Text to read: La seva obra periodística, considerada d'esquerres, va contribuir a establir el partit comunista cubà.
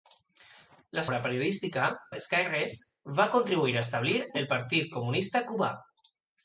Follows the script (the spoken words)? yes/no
no